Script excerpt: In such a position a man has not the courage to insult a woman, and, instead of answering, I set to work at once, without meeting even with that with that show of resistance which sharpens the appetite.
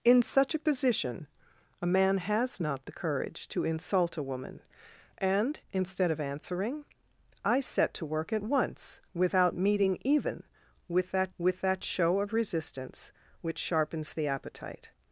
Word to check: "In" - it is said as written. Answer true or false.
true